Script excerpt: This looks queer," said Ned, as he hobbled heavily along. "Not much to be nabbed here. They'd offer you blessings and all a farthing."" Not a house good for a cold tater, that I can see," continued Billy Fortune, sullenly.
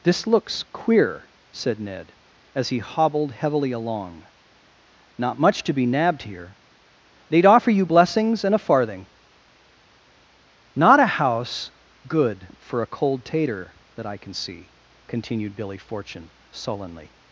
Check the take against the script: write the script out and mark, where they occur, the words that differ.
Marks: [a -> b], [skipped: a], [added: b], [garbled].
This looks queer," said Ned, as he hobbled heavily along. "Not much to be nabbed here. They'd offer you blessings and [skipped: all] a farthing."" Not a house good for a cold tater, that I can see," continued Billy Fortune, sullenly.